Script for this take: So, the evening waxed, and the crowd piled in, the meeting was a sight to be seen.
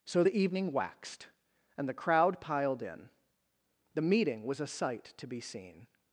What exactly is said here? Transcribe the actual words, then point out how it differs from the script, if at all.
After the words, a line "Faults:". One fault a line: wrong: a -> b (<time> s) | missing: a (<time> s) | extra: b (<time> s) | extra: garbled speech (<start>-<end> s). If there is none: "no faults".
So, the evening waxed, and the crowd piled in, the meeting was a sight to be seen.
Faults:
no faults